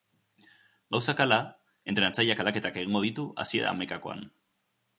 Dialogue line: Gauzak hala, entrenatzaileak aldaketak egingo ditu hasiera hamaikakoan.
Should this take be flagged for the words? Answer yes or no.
no